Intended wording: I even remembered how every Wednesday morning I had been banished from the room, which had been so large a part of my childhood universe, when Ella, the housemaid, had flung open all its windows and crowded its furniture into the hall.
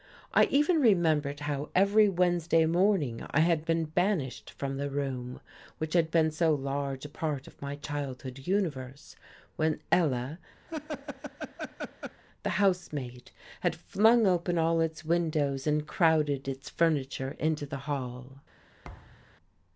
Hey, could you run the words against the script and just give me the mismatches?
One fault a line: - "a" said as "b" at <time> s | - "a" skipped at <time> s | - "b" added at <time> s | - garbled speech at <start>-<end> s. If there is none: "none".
none